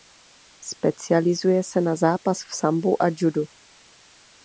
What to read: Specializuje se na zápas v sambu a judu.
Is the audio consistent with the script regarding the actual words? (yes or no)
yes